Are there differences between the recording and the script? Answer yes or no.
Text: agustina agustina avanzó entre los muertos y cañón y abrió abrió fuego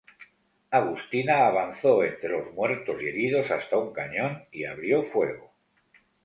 yes